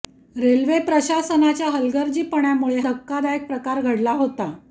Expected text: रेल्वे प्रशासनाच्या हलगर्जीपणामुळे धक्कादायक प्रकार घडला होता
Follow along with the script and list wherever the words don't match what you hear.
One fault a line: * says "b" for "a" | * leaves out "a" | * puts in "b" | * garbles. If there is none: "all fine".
all fine